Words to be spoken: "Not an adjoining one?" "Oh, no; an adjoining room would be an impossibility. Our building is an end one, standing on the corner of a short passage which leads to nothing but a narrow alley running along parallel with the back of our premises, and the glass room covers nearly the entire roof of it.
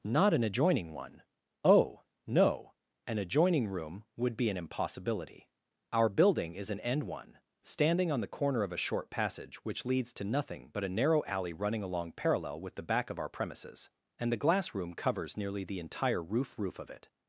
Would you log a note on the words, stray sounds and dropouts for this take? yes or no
yes